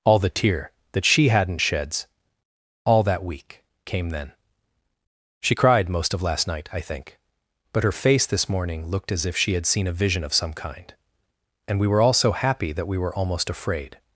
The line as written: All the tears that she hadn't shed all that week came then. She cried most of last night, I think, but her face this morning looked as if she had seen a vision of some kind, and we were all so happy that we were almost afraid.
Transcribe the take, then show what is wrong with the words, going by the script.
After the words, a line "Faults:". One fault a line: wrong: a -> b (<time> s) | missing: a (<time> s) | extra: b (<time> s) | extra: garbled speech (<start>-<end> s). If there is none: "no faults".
All the tear that she hadn't sheds all that week came then. She cried most of last night, I think, but her face this morning looked as if she had seen a vision of some kind, and we were all so happy that we were almost afraid.
Faults:
wrong: tears -> tear (0.3 s)
wrong: shed -> sheds (1.6 s)